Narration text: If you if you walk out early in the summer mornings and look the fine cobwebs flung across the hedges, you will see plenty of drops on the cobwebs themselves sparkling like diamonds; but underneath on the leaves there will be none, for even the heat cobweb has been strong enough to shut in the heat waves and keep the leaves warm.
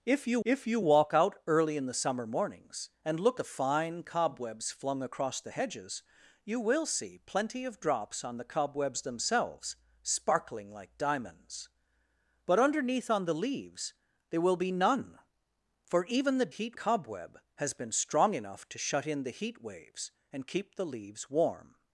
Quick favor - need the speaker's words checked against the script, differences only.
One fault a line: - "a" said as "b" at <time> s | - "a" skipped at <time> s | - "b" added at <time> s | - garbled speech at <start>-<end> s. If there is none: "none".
none